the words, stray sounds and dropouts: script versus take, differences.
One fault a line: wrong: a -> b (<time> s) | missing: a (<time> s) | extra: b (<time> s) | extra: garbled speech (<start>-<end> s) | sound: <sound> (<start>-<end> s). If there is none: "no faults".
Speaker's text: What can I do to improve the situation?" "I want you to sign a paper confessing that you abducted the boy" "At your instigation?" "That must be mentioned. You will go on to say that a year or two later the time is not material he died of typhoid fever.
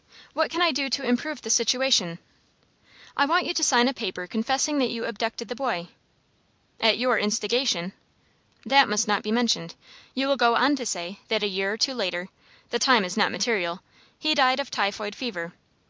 extra: not (9.1 s)